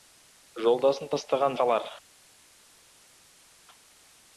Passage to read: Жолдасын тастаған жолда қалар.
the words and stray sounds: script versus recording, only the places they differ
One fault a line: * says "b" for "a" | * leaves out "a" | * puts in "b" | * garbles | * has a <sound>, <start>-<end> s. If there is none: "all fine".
* leaves out "жолда"